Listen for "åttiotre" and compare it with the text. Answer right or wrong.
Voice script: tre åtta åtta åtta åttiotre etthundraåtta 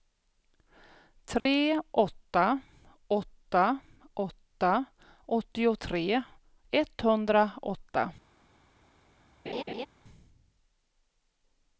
right